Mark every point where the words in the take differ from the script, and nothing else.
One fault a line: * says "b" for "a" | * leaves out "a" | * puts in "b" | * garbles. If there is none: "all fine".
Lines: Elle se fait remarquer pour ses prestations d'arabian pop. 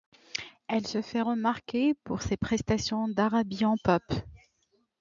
all fine